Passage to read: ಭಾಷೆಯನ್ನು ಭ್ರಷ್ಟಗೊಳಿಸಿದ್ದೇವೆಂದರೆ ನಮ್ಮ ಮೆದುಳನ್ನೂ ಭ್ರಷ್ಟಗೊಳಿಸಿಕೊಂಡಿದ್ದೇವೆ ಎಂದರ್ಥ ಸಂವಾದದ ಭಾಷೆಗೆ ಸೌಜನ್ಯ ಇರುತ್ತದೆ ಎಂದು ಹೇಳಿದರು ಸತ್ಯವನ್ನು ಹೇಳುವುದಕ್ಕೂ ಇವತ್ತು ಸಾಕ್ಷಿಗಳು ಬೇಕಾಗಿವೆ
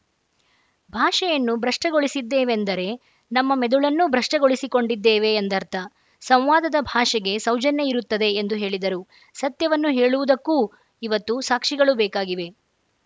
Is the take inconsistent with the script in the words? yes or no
no